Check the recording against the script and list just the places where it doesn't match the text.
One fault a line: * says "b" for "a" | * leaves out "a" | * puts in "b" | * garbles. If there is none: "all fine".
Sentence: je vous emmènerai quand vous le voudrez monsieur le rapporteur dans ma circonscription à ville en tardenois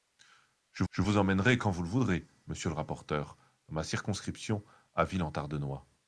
* puts in "je"